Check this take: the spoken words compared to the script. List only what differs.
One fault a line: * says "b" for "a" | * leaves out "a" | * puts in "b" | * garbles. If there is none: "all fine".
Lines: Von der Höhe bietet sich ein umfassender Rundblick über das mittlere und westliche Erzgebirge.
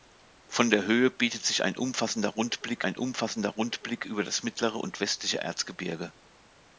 * puts in "ein umfassender Rundblick"